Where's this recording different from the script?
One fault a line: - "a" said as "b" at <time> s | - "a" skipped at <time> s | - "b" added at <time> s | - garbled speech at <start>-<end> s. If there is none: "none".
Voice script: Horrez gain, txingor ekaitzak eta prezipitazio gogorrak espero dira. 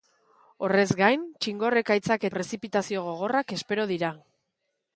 - "eta" skipped at 2.3 s